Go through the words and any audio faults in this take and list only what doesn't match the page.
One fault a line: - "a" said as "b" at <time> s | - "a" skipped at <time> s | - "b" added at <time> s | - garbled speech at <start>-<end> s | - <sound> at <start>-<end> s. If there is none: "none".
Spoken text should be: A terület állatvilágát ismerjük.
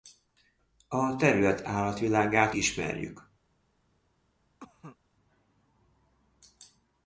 - cough at 4.6-5.0 s